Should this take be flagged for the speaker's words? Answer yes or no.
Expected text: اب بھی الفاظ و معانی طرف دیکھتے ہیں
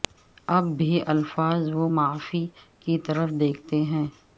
yes